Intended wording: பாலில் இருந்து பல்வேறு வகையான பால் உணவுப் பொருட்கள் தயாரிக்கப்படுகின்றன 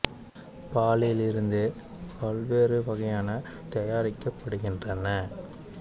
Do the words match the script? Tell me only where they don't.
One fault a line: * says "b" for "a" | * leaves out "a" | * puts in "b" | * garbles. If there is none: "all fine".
* leaves out "பால் உணவுப் பொருட்கள்"